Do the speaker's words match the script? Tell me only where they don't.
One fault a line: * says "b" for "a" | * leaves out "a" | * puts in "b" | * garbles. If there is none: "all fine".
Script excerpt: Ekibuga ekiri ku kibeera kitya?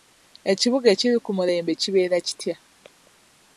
* puts in "mulembe"